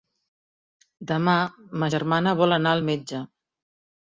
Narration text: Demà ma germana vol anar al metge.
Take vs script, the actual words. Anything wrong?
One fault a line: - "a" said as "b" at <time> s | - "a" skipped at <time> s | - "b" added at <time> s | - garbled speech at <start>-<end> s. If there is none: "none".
none